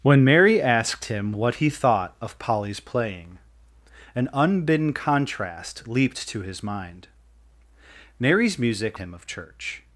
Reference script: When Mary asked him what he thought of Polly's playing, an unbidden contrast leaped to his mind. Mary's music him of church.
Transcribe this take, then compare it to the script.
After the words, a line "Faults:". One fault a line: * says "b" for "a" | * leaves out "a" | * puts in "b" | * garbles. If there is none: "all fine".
When Mary asked him what he thought of Polly's playing, an unbidden contrast leaped to his mind. Mary's music him of church.
Faults:
all fine